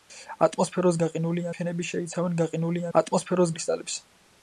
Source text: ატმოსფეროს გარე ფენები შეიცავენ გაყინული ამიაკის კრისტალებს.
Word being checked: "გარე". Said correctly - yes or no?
no